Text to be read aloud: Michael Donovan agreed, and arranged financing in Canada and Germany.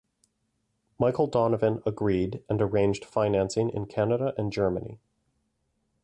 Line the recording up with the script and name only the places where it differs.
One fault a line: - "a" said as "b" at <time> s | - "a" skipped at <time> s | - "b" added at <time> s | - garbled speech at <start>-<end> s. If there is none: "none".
none